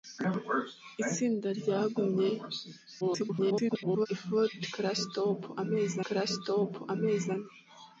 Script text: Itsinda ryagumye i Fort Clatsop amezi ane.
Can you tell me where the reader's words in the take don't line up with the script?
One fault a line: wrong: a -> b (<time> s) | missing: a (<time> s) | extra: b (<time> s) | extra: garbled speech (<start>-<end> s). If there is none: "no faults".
extra: garbled speech (3.0-4.1 s)
extra: Clatsop amezi (6.1 s)